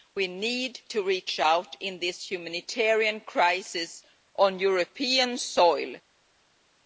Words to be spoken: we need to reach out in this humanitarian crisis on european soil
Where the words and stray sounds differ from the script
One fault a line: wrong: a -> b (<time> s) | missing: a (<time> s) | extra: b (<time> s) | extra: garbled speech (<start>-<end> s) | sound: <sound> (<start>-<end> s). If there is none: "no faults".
no faults